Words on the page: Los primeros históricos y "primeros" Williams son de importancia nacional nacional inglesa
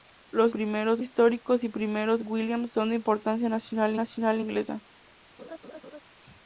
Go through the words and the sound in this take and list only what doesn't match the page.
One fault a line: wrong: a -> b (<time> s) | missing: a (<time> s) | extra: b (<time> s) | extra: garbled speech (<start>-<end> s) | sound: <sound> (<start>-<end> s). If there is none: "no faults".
sound: laugh (5.4-6.0 s)